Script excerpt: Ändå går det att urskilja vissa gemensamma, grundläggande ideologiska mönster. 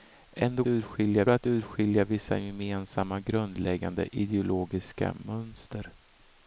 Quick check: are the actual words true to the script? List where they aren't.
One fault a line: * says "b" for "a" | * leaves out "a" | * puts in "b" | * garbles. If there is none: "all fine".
* says "urskilja" for "går"